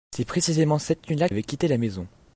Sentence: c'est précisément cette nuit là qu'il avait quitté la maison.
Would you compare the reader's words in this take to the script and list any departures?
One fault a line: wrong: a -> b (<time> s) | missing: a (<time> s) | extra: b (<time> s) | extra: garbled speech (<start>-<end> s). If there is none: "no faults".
missing: qu'il (1.3 s)